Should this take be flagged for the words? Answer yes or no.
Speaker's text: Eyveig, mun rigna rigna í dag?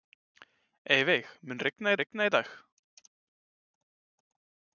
no